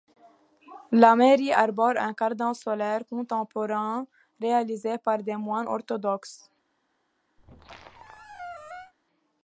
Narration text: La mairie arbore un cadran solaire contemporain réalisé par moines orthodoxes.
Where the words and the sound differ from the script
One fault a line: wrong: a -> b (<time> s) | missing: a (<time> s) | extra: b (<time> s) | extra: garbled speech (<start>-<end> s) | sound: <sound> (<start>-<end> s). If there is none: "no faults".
extra: des (5.2 s)
sound: squeak (7.4-8.9 s)